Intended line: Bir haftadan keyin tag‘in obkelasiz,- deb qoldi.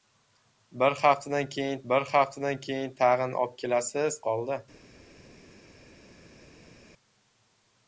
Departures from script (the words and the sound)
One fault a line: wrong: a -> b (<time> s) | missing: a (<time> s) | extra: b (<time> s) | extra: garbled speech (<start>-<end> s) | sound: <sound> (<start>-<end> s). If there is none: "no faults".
extra: bir haftadan keyin (1.9 s)
missing: deb (4.2 s)